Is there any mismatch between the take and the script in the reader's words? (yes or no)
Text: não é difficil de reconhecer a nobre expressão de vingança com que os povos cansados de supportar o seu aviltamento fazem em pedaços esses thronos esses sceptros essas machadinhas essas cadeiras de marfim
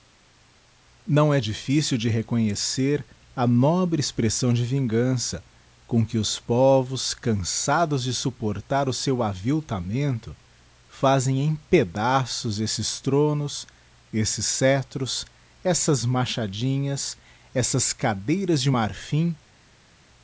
no